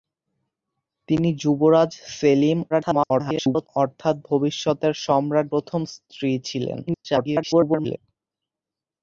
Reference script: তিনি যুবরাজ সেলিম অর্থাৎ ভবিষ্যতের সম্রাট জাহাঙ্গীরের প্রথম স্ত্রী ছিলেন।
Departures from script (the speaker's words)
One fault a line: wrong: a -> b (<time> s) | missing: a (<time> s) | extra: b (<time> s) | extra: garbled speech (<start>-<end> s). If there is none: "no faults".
extra: garbled speech (2.7-3.7 s)
missing: জাহাঙ্গীরের (5.5 s)
extra: garbled speech (6.9-8.0 s)